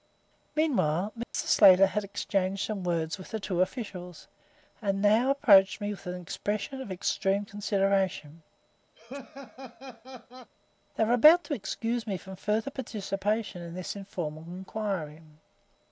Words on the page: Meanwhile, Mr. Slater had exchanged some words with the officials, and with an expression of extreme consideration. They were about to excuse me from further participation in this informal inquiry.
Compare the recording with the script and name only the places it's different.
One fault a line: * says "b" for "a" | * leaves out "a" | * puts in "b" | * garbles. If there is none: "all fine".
* puts in "two"
* puts in "now approached me"